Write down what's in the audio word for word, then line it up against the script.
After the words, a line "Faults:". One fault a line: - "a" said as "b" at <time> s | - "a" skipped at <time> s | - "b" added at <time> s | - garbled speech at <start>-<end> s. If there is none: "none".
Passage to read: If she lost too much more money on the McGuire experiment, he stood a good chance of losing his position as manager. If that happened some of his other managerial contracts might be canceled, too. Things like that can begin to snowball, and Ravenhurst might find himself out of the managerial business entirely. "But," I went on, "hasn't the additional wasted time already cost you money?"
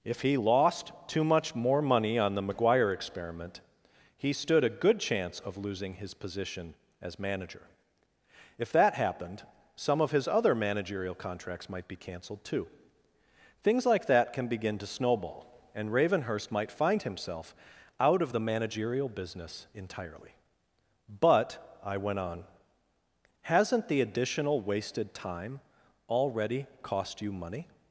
If he lost too much more money on the McGuire experiment, he stood a good chance of losing his position as manager. If that happened some of his other managerial contracts might be canceled, too. Things like that can begin to snowball, and Ravenhurst might find himself out of the managerial business entirely. "But," I went on, "hasn't the additional wasted time already cost you money?"
Faults:
- "she" said as "he" at 0.2 s